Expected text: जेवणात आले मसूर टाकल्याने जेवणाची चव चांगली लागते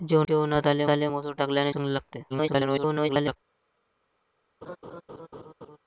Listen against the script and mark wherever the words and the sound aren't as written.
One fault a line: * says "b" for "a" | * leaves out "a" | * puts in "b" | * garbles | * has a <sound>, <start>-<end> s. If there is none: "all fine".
* puts in "आले"
* leaves out "जेवणाची चव"
* garbles
* has a laugh, 4.6-5.8 s